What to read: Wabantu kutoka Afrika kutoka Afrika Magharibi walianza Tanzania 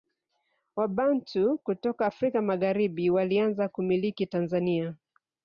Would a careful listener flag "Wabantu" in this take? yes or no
no